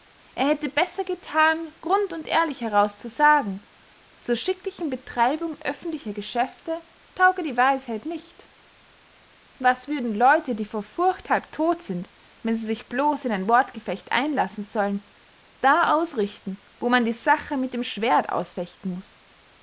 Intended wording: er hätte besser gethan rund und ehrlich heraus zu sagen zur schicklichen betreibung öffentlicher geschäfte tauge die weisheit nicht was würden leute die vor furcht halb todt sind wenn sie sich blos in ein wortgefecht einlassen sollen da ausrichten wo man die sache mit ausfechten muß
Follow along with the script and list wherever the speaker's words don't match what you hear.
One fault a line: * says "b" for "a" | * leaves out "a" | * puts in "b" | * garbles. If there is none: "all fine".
* puts in "dem schwerdt"